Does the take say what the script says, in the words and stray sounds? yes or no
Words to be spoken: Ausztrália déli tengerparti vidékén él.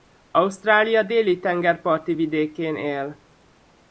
yes